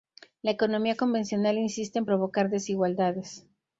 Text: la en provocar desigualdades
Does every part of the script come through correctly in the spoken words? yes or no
no